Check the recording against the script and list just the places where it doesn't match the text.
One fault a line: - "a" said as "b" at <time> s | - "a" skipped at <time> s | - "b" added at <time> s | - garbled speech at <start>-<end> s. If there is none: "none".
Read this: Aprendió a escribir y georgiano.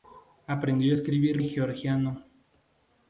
none